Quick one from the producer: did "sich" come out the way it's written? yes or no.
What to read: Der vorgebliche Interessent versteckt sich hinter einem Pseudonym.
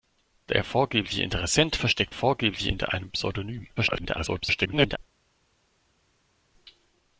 no